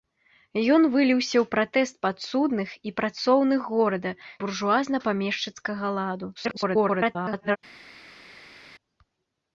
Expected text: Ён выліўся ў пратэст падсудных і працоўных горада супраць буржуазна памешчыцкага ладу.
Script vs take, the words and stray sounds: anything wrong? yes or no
yes